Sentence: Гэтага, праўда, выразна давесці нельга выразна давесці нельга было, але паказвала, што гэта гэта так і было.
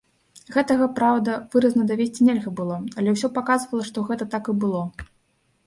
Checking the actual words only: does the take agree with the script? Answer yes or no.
no